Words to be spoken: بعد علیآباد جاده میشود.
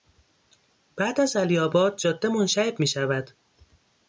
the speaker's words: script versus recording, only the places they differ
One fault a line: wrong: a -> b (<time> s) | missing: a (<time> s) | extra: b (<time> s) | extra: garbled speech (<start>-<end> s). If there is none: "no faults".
extra: از (1.2 s)
extra: منشعب (2.3 s)